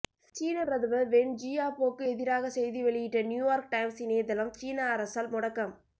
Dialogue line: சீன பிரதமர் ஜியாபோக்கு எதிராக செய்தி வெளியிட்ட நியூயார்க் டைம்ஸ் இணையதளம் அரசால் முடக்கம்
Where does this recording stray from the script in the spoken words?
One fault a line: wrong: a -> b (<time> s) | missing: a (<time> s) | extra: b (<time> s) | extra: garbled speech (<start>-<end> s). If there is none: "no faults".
extra: வென் (1.1 s)
extra: சீன (4.5 s)